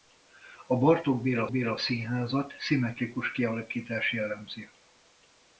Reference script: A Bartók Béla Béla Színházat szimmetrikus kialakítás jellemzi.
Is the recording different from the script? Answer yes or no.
no